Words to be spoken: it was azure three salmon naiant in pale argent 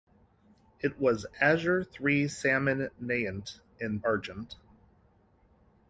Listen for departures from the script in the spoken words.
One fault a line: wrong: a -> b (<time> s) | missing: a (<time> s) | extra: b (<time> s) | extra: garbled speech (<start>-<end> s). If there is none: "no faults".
missing: pale (4.0 s)